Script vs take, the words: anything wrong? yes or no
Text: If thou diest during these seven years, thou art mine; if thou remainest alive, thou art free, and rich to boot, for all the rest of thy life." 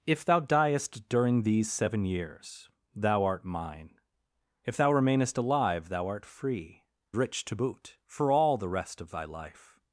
yes